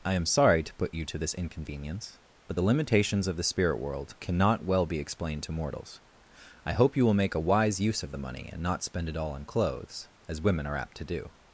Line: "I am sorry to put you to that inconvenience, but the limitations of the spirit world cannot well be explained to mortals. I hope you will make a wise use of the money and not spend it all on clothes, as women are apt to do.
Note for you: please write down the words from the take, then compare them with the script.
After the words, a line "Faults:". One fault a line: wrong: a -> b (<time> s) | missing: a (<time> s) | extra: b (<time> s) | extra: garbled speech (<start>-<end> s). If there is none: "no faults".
"I am sorry to put you to this inconvenience, but the limitations of the spirit world cannot well be explained to mortals. I hope you will make a wise use of the money and not spend it all on clothes, as women are apt to do.
Faults:
wrong: that -> this (1.2 s)